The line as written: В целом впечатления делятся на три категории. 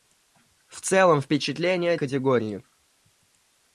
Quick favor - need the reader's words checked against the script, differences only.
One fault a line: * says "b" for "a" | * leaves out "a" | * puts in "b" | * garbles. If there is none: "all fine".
* leaves out "делятся на три"